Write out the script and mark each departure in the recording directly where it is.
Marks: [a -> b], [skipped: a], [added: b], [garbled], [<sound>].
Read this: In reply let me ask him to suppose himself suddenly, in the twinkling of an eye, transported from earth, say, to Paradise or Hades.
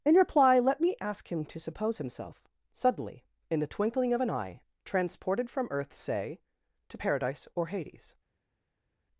In reply let me ask him to suppose himself suddenly, in the twinkling of an eye, transported from earth, say, to Paradise or Hades.